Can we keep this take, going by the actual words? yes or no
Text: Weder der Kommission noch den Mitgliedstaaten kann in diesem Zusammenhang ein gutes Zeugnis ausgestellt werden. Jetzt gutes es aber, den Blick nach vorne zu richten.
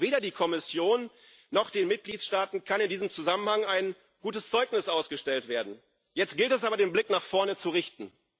no